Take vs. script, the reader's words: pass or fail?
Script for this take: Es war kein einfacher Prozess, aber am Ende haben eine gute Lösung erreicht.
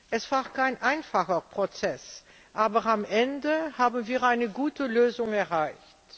fail